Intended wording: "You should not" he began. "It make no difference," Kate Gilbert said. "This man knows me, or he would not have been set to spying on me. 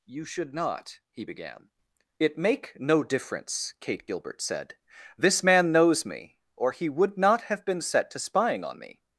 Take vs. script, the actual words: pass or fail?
pass